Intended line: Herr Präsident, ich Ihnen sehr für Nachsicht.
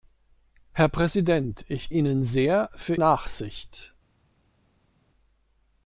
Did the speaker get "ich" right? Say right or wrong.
right